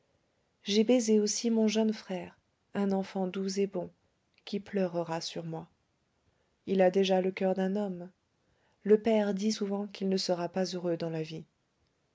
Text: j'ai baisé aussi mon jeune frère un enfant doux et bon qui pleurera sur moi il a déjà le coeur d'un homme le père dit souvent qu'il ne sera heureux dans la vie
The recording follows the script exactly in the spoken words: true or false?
false